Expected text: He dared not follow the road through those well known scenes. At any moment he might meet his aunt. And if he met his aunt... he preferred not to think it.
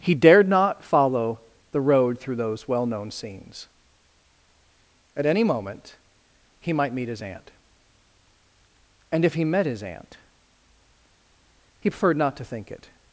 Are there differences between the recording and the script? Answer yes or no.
no